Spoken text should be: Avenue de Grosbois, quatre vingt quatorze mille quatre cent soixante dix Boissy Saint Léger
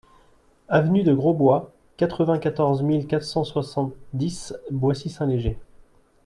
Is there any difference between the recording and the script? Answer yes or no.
no